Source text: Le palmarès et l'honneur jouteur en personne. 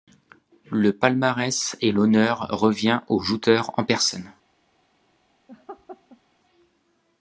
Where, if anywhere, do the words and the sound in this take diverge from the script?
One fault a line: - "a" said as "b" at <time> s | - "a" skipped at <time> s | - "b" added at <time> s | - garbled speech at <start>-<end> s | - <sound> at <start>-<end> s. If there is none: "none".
- "revient au" added at 2.5 s
- laugh at 5.5-6.2 s